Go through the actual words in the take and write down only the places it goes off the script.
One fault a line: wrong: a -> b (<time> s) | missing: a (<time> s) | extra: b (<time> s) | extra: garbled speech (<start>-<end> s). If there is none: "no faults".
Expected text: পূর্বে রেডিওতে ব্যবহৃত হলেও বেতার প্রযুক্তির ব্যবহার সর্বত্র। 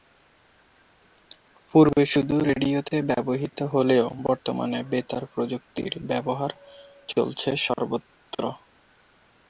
extra: শুধু (2.1 s)
extra: বর্তমানে (4.2 s)
extra: চলছে (7.1 s)